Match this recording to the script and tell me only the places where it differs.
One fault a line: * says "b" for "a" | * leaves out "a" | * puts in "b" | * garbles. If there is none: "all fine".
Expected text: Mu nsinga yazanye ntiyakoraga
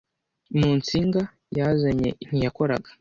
all fine